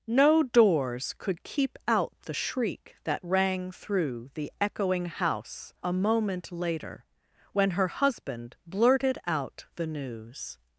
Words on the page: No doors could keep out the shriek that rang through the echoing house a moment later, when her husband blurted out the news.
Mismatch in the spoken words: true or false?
false